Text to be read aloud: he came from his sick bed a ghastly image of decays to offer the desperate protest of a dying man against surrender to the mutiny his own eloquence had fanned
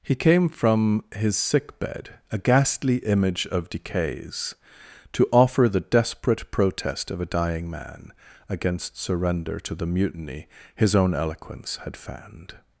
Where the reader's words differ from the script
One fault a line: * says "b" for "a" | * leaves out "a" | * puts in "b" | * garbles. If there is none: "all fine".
all fine